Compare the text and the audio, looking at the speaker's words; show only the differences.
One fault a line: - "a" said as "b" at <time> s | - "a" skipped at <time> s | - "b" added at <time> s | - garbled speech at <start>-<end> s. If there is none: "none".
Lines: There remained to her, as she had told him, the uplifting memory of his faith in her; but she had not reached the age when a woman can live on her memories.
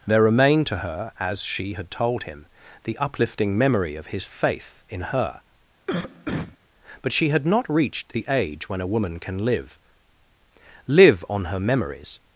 - "live" added at 10.9 s